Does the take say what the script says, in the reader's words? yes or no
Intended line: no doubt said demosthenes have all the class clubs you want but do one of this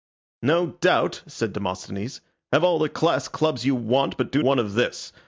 yes